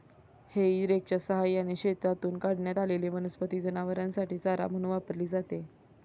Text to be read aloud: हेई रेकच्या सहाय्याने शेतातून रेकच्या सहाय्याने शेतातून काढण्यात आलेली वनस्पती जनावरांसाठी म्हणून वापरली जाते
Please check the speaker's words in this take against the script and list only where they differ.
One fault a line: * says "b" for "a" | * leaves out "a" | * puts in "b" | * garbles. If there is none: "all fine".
* leaves out "रेकच्या सहाय्याने शेतातून"
* puts in "चारा"